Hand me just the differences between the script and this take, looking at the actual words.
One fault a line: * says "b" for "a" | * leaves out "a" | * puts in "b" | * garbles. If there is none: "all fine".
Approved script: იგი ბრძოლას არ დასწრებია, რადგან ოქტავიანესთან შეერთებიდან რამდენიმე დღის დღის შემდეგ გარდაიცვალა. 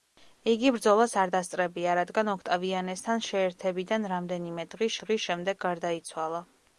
all fine